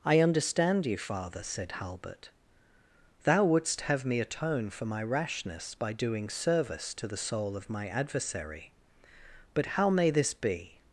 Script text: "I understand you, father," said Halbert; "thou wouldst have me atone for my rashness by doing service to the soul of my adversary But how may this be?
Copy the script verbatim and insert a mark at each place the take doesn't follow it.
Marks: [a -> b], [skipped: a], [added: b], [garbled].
"I understand you, father," said Halbert; "thou wouldst have me atone for my rashness by doing service to the soul of my adversary But how may this be?